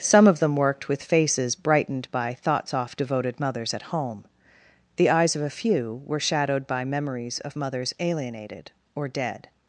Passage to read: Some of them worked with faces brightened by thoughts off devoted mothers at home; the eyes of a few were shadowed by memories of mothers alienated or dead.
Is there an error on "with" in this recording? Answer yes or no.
no